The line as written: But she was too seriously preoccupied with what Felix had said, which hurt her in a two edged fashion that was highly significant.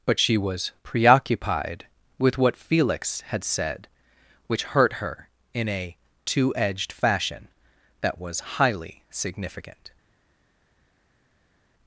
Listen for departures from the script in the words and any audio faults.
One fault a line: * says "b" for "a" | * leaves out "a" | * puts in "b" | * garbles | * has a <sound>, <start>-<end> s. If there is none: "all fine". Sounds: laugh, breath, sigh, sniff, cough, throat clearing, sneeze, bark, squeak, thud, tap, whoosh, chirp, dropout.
* leaves out "too seriously"